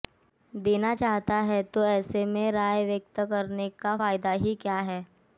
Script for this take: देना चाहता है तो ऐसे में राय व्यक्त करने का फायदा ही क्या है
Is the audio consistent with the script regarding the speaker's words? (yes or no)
yes